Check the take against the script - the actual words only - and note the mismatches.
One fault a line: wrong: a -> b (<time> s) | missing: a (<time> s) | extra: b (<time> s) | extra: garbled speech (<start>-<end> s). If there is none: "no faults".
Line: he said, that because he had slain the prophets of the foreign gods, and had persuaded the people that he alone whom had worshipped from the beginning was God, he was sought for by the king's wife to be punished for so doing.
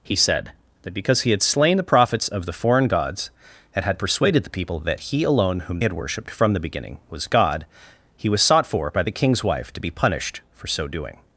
no faults